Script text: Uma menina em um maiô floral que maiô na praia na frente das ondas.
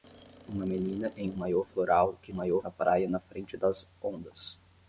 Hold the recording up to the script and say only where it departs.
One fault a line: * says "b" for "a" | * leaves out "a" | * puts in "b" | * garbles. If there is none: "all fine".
all fine